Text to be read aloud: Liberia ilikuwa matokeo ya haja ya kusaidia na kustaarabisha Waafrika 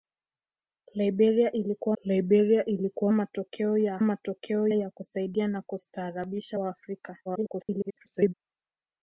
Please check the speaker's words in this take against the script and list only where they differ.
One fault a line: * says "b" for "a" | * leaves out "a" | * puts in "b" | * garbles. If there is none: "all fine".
* puts in "liberia ilikuwa"
* says "matokeo" for "haja"
* garbles